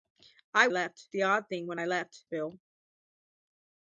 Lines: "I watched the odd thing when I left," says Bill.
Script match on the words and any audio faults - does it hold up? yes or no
no